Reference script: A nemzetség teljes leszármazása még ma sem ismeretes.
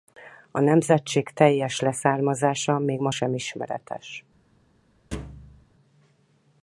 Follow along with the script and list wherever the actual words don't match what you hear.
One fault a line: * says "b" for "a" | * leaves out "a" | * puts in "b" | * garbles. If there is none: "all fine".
all fine